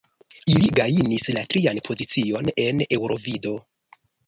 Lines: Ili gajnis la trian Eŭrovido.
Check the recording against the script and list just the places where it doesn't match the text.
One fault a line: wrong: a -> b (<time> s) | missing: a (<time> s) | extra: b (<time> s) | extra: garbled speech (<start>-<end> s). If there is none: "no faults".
extra: pozicion en (1.9 s)